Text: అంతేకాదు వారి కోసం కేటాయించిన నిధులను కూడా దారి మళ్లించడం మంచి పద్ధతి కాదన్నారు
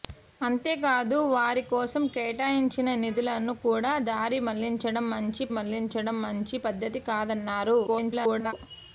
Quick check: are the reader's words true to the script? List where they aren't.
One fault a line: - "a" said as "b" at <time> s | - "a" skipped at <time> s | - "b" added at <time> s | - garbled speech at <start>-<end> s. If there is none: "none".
- "మళ్లించడం మంచి" added at 5.6 s
- garbled speech at 7.9-8.5 s